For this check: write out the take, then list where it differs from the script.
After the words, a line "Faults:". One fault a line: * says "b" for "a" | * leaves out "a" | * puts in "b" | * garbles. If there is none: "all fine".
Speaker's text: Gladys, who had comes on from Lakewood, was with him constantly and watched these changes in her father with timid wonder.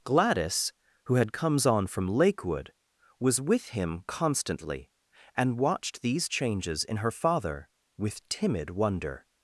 Gladys, who had comes on from Lakewood, was with him constantly and watched these changes in her father with timid wonder.
Faults:
all fine